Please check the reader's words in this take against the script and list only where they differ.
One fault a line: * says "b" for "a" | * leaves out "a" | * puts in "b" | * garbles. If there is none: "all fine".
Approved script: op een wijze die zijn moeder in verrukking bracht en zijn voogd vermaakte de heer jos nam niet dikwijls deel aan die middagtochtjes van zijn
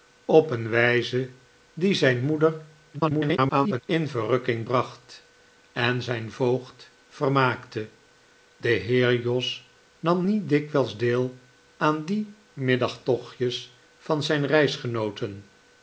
* garbles